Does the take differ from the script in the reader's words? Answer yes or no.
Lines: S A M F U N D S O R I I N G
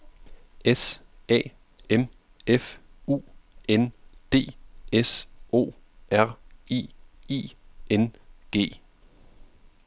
no